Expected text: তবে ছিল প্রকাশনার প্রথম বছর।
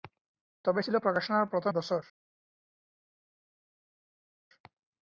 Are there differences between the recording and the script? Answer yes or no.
no